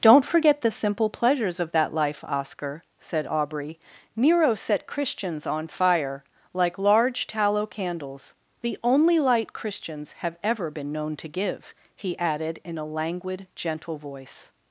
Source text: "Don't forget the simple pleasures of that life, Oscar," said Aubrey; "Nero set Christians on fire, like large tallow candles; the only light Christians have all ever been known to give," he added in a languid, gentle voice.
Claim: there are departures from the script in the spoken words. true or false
true